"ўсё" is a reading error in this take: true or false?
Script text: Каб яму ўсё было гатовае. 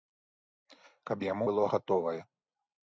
true